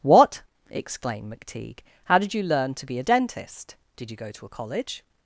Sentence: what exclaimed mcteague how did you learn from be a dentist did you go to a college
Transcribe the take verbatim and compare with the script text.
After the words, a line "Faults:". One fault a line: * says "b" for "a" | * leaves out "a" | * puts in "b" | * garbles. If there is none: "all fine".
what exclaimed mcteague how did you learn to be a dentist did you go to a college
Faults:
* says "to" for "from"